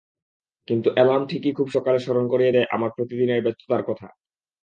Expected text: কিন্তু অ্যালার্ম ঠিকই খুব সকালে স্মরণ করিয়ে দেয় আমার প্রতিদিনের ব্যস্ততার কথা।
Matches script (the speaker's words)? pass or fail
pass